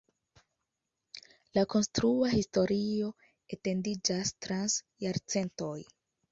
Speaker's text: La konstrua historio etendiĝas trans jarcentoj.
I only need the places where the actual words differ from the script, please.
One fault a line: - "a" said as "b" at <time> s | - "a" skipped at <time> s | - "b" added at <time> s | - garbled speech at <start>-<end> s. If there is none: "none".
none